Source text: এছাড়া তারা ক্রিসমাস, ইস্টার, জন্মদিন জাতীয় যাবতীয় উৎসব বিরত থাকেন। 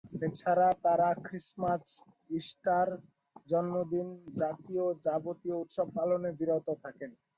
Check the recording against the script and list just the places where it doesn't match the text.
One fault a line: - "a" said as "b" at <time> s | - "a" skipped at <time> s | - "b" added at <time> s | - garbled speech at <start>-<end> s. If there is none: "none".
- "পালনে" added at 6.0 s